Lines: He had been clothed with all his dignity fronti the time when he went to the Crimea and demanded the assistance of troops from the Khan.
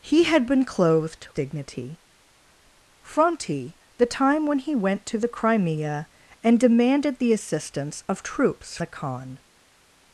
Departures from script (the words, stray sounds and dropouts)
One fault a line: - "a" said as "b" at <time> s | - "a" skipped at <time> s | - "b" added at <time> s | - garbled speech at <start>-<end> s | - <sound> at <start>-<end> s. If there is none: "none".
- "with all his" skipped at 1.3 s
- "from" skipped at 8.8 s